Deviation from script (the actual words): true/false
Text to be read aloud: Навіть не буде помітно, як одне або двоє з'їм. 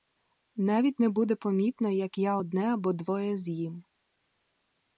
true